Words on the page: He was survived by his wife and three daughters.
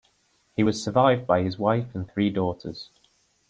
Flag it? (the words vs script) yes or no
no